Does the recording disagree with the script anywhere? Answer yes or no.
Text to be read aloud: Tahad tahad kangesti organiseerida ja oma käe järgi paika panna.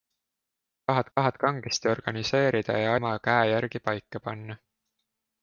no